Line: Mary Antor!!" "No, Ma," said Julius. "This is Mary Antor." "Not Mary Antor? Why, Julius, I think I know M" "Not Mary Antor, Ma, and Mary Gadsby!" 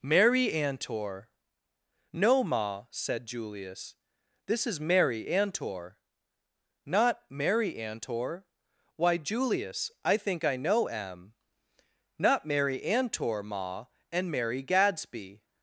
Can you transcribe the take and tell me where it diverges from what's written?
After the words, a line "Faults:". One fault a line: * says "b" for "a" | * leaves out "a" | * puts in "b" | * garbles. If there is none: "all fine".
Mary Antor!!" "No, Ma," said Julius. "This is Mary Antor." "Not Mary Antor? Why, Julius, I think I know M" "Not Mary Antor, Ma, and Mary Gadsby!"
Faults:
all fine